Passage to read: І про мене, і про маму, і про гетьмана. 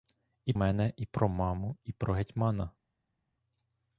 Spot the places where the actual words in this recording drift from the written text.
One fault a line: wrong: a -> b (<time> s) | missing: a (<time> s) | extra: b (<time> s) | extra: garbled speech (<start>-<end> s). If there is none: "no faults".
missing: про (0.5 s)